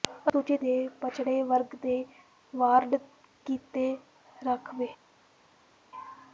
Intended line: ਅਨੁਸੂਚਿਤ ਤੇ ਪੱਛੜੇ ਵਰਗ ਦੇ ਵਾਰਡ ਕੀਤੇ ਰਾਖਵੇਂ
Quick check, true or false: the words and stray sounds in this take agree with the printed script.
true